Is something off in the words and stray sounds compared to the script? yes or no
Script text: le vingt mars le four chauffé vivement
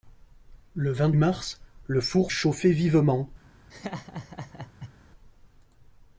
yes